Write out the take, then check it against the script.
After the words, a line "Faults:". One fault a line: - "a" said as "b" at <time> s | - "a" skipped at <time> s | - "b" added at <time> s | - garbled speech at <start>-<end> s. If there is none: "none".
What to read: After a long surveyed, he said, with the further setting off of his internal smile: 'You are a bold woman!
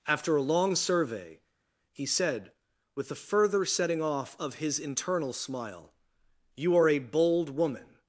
After a long survey, he said, with the further setting off of his internal smile: 'You are a bold woman!
Faults:
- "surveyed" said as "survey" at 0.8 s